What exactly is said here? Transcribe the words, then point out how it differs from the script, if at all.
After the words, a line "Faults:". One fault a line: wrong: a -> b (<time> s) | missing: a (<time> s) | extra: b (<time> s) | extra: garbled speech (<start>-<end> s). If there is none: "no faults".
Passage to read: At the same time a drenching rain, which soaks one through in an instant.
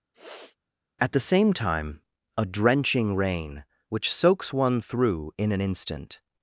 At the same time a drenching rain, which soaks one through in an instant.
Faults:
no faults